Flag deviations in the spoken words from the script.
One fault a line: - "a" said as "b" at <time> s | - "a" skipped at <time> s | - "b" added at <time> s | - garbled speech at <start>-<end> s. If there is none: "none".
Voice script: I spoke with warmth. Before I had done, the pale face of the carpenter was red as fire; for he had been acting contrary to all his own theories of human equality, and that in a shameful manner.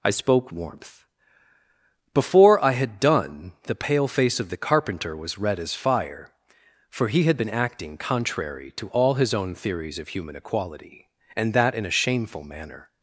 - "with" skipped at 0.5 s